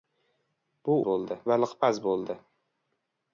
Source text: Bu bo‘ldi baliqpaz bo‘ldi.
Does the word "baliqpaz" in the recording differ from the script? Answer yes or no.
no